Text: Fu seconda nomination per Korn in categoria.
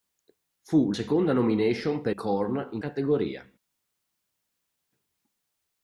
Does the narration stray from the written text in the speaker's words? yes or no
no